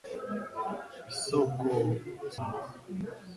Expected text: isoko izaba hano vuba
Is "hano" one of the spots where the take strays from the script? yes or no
yes